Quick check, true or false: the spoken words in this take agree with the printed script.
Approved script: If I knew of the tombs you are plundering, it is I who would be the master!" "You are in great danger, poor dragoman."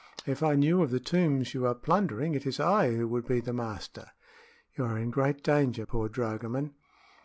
true